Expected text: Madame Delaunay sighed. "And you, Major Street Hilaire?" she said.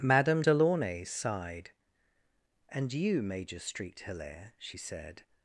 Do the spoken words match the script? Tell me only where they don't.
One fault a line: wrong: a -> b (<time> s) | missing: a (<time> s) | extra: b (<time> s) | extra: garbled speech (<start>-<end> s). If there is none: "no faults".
no faults